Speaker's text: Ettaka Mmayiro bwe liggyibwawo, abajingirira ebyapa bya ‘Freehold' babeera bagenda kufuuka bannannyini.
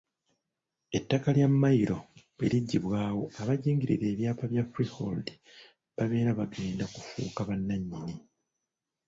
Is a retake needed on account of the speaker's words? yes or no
yes